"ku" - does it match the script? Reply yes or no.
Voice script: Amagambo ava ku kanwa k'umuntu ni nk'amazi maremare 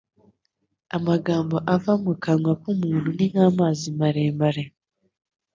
no